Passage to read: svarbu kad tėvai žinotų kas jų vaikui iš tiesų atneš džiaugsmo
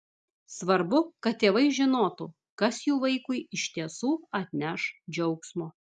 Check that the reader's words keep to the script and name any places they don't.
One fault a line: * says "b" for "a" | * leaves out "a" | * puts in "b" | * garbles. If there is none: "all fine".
all fine